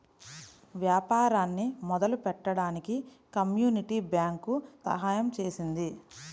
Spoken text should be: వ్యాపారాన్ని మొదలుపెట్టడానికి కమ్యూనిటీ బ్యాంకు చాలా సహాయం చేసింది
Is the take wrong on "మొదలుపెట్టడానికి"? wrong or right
right